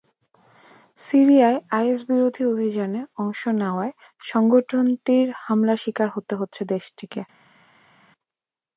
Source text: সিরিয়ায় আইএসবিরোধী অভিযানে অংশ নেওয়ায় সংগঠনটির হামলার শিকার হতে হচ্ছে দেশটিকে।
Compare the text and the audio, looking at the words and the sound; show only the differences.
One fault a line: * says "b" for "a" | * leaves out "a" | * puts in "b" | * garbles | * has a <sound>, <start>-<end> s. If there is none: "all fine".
all fine